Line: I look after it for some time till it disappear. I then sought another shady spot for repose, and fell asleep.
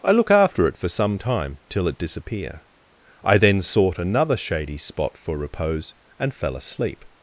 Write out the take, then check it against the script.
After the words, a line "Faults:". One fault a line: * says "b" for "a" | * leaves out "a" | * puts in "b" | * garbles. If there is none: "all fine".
I look after it for some time till it disappear. I then sought another shady spot for repose, and fell asleep.
Faults:
all fine